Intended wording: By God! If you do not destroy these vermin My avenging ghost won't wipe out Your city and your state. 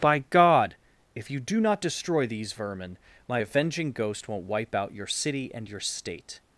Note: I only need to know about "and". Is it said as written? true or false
true